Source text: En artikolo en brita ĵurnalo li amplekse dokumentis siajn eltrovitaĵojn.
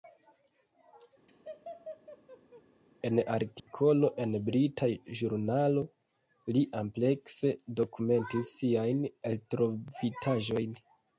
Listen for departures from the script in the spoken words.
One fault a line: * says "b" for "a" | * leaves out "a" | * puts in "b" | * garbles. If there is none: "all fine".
all fine